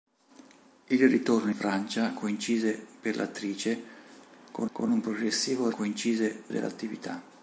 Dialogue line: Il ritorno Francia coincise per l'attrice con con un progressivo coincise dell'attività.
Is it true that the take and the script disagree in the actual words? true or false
false